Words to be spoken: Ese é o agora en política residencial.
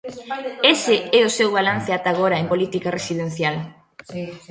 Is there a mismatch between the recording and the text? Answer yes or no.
yes